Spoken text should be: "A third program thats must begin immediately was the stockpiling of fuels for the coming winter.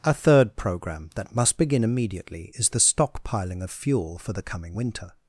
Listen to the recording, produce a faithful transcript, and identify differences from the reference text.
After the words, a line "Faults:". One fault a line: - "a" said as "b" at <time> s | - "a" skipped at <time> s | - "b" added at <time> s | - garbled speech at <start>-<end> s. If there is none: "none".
"A third program that must begin immediately is the stockpiling of fuel for the coming winter.
Faults:
- "thats" said as "that" at 1.1 s
- "was" said as "is" at 2.5 s
- "fuels" said as "fuel" at 3.7 s